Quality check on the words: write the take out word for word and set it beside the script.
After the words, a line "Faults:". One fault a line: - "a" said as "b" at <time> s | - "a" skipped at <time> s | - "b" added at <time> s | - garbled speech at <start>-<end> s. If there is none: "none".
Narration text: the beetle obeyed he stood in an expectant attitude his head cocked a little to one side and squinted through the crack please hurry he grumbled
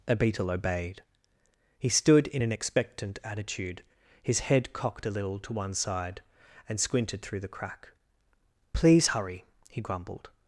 a beetle obeyed he stood in an expectant attitude his head cocked a little to one side and squinted through the crack please hurry he grumbled
Faults:
- "the" said as "a" at 0.1 s